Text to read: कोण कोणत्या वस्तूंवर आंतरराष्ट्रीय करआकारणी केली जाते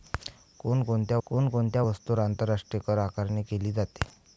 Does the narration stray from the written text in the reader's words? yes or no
yes